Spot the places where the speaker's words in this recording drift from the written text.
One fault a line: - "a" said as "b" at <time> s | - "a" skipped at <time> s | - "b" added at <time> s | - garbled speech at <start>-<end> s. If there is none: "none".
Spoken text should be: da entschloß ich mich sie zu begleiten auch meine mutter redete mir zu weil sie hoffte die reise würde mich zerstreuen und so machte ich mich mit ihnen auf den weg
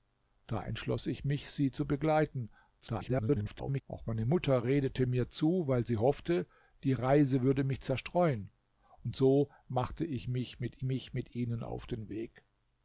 - garbled speech at 2.8-3.8 s
- "mich mit" added at 10.8 s